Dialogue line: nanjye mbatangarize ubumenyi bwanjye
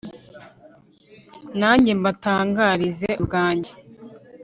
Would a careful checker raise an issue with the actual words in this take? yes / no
yes